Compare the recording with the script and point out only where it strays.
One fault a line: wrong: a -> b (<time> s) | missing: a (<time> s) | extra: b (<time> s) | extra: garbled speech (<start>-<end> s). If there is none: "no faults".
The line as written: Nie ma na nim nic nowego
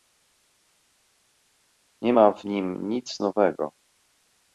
wrong: na -> w (2.3 s)